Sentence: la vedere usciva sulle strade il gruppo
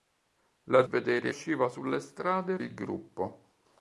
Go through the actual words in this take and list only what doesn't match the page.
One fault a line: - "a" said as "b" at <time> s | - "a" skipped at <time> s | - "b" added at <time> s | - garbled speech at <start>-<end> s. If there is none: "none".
none